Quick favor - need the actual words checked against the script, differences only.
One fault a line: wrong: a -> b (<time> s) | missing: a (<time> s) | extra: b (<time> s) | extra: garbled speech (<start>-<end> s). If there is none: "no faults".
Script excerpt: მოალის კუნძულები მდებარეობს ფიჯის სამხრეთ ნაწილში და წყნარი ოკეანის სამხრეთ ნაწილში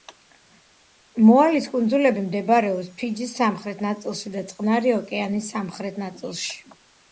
no faults